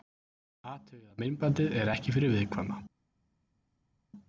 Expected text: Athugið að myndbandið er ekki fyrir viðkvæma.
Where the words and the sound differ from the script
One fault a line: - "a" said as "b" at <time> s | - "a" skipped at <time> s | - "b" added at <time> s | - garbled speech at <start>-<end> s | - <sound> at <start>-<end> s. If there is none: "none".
none